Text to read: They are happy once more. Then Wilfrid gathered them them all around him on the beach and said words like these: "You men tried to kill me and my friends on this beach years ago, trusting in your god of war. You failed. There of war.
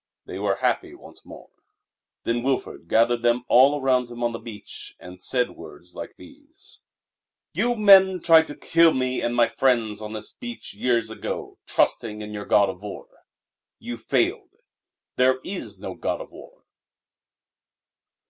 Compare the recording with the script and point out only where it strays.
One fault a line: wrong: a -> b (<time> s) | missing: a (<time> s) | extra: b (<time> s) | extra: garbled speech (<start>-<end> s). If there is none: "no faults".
wrong: are -> were (0.4 s)
missing: them (3.5 s)
extra: is no god (15.4 s)